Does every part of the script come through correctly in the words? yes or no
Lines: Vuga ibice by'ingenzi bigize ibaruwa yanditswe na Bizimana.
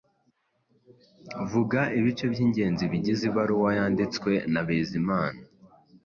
yes